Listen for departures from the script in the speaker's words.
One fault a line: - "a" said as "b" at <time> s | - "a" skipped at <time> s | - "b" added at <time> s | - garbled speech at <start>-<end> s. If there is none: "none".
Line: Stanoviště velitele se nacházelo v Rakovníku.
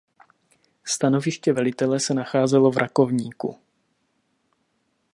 none